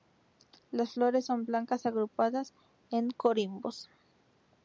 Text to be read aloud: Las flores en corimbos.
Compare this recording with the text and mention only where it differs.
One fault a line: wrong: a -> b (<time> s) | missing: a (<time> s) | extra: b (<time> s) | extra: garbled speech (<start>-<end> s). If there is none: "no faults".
extra: son blancas agrupadas (1.3 s)